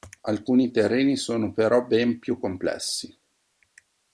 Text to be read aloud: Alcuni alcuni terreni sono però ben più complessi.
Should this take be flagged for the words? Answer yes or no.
yes